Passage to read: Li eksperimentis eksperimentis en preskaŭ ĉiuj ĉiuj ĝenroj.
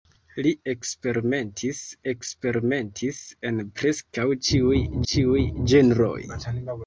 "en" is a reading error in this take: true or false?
false